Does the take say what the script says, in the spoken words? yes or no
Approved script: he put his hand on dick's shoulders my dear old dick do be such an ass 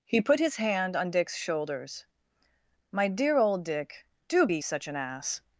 yes